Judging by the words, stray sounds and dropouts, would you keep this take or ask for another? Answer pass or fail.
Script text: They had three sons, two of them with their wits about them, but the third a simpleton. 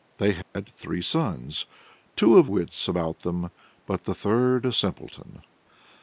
fail